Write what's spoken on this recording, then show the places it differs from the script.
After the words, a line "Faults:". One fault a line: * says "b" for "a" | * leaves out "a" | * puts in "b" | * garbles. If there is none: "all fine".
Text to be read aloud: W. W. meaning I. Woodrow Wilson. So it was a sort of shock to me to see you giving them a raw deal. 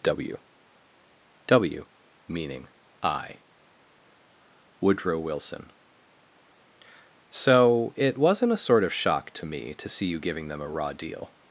W. W. meaning I. Woodrow Wilson. So it wasn't a sort of shock to me to see you giving them a raw deal.
Faults:
* says "wasn't" for "was"